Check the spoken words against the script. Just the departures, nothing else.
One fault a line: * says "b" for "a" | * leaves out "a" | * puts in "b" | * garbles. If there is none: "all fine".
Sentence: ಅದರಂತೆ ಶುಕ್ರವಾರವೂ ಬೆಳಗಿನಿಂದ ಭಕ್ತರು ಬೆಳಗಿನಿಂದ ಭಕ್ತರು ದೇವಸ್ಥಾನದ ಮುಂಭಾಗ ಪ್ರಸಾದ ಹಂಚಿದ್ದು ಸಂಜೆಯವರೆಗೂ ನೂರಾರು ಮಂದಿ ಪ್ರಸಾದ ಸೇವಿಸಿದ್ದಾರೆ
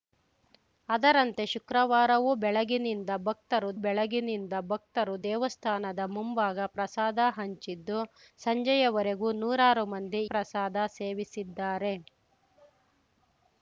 all fine